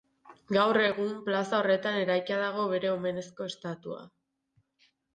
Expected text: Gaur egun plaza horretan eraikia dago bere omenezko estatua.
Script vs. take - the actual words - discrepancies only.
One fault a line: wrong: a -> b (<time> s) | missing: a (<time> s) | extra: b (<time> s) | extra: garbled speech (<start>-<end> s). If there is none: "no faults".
no faults